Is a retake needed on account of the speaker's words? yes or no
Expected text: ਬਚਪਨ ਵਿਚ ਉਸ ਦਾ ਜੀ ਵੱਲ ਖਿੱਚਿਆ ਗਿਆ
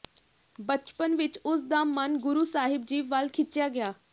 yes